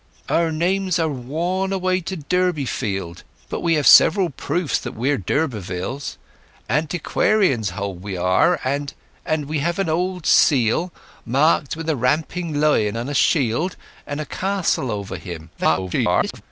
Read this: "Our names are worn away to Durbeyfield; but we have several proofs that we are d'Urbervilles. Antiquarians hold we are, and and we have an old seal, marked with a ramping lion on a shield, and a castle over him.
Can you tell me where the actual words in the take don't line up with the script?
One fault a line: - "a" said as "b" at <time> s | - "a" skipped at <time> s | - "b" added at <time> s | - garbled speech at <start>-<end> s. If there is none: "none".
- garbled speech at 15.6-16.4 s